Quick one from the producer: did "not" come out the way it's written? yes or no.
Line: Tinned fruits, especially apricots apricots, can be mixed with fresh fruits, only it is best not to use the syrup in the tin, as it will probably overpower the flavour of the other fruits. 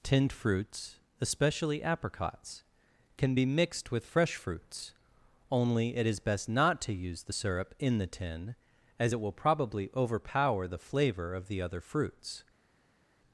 yes